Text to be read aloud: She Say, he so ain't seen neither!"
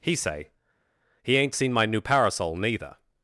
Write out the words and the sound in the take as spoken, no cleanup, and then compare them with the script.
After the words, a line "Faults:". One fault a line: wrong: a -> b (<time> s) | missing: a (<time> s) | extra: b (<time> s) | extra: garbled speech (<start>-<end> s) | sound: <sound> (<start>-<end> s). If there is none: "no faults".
He Say, he ain't seen my new parasol, neither!"
Faults:
wrong: She -> He (0.0 s)
missing: so (1.4 s)
extra: my new parasol (1.7 s)